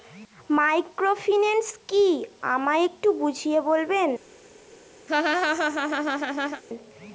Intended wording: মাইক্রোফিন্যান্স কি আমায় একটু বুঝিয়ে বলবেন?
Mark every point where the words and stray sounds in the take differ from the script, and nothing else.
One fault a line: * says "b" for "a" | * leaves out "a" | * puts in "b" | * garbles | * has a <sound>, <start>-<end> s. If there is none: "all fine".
* has a laugh, 5.1-6.6 s